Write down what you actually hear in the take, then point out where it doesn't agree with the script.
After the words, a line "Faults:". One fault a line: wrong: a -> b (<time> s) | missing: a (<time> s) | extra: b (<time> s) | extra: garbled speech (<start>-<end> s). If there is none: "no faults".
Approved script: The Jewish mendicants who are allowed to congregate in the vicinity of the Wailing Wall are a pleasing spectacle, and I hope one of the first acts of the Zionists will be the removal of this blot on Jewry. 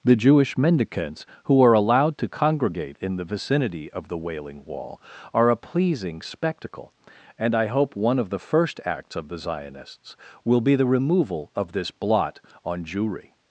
The Jewish mendicants who are allowed to congregate in the vicinity of the Wailing Wall are a pleasing spectacle, and I hope one of the first acts of the Zionists will be the removal of this blot on Jewry.
Faults:
no faults